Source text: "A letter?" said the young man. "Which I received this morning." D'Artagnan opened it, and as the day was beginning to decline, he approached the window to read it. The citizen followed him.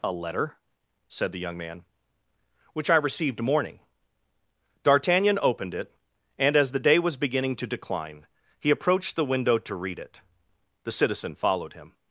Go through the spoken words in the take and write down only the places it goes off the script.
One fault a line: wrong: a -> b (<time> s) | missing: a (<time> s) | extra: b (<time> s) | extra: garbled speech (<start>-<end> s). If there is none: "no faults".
missing: this (3.4 s)